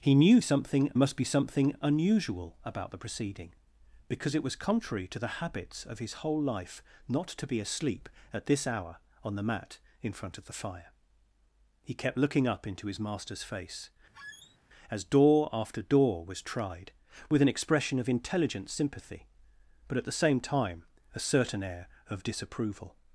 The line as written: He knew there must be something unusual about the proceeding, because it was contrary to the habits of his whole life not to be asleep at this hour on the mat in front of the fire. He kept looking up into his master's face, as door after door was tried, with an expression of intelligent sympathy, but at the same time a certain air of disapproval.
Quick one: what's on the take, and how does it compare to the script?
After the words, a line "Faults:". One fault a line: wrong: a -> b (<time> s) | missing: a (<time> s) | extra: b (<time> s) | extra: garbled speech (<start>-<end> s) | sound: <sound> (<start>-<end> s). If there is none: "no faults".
He knew something must be something unusual about the proceeding, because it was contrary to the habits of his whole life not to be asleep at this hour on the mat in front of the fire. He kept looking up into his master's face, as door after door was tried, with an expression of intelligent sympathy, but at the same time a certain air of disapproval.
Faults:
wrong: there -> something (0.4 s)
sound: squeak (14.1-14.6 s)